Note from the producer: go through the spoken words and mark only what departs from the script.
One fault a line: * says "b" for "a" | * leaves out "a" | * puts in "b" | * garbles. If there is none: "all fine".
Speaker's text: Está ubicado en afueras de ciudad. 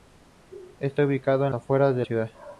all fine